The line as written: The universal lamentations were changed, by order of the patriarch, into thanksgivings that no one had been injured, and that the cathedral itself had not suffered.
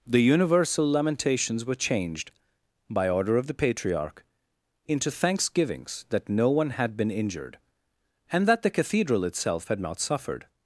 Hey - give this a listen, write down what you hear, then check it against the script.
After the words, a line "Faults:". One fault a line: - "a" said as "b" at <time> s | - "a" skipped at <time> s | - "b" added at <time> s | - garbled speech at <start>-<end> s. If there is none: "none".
The universal lamentations were changed, by order of the patriarch, into thanksgivings that no one had been injured, and that the cathedral itself had not suffered.
Faults:
none